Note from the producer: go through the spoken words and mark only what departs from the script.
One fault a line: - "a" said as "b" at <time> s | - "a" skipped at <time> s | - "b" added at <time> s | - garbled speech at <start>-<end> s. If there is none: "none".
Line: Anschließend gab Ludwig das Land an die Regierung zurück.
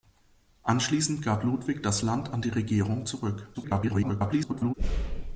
- garbled speech at 3.5-4.7 s